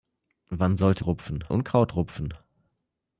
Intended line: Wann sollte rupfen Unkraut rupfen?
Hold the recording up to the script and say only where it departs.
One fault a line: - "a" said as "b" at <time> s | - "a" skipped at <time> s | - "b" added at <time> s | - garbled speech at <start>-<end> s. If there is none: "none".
none